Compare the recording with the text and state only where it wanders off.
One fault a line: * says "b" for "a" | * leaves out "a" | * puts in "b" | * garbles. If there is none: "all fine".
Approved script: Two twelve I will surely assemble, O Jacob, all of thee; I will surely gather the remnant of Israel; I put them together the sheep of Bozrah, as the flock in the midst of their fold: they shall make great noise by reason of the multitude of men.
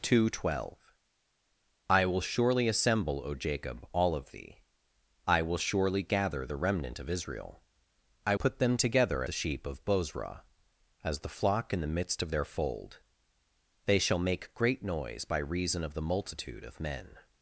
all fine